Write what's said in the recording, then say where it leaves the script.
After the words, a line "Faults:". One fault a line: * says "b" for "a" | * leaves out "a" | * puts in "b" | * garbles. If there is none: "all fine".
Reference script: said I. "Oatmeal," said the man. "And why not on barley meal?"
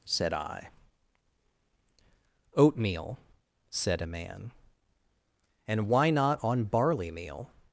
said I. "Oatmeal," said a man. "And why not on barley meal?"
Faults:
* says "a" for "the"